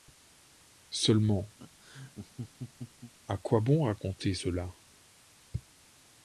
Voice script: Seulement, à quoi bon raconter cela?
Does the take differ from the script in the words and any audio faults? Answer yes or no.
yes